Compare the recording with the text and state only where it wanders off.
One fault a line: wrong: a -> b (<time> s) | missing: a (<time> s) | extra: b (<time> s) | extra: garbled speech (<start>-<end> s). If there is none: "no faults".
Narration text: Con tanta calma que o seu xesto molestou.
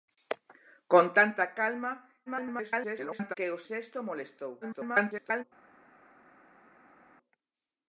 extra: garbled speech (2.3-3.3 s)
missing: seu (3.6 s)
extra: garbled speech (4.6-5.4 s)